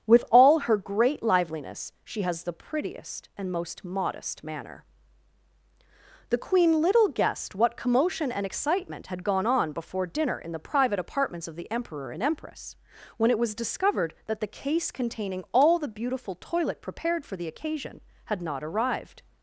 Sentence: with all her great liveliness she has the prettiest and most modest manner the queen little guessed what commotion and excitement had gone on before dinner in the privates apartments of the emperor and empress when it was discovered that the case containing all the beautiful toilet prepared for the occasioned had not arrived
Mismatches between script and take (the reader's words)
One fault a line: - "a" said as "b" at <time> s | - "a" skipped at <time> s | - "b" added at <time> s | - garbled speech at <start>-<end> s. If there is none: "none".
- "privates" said as "private" at 10.6 s
- "occasioned" said as "occasion" at 17.5 s